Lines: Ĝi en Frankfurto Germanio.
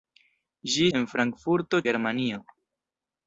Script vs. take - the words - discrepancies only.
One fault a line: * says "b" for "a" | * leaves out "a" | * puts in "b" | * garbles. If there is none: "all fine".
all fine